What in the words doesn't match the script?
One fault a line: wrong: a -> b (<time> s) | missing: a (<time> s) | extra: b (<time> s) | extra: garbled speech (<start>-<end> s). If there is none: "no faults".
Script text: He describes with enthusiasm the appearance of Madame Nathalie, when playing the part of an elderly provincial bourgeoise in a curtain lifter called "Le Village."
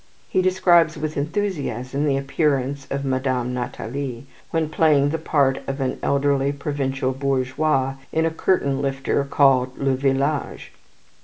no faults